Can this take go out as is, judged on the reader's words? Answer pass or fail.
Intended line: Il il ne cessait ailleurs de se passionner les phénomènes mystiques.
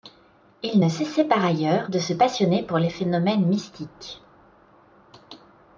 fail